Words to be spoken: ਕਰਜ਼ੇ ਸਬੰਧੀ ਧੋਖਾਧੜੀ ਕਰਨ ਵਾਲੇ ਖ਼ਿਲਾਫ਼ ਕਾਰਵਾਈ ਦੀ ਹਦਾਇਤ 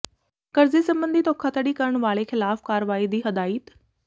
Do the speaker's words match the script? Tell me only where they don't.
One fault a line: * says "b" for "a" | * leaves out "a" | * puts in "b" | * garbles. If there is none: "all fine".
all fine